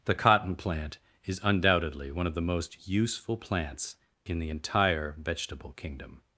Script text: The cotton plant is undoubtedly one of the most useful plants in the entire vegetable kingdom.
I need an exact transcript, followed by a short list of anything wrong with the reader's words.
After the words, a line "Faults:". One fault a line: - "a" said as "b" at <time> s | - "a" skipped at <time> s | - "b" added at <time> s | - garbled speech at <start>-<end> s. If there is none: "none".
The cotton plant is undoubtedly one of the most useful plants in the entire vegetable kingdom.
Faults:
none